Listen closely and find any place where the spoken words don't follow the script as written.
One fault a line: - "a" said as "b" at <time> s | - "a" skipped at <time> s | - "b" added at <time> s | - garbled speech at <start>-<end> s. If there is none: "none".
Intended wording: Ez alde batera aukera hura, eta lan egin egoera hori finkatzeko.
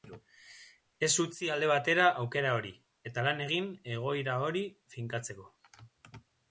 - "utzi" added at 1.2 s
- "hura" said as "hori" at 2.6 s